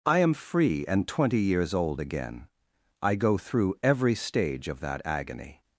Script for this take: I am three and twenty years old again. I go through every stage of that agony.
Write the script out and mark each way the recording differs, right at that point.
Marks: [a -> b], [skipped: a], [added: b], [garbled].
I am [three -> free] and twenty years old again. I go through every stage of that agony.